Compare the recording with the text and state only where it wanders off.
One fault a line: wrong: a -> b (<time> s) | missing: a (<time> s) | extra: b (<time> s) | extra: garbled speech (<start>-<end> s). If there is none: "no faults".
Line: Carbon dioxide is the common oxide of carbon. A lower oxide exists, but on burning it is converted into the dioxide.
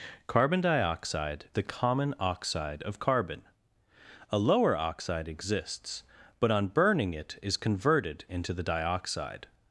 missing: is (1.5 s)